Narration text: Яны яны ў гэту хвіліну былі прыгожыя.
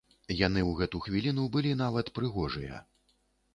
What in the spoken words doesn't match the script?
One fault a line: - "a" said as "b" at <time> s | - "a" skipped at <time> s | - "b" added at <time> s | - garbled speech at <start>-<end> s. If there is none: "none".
- "яны" skipped at 0.6 s
- "нават" added at 1.8 s